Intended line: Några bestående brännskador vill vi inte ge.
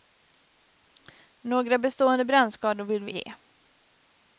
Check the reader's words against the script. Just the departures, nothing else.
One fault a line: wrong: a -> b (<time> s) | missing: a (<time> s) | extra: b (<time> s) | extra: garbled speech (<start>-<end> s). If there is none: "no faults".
missing: inte (3.1 s)